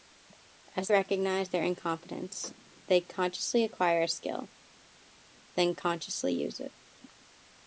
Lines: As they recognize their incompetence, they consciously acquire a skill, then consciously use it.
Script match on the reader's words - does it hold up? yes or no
no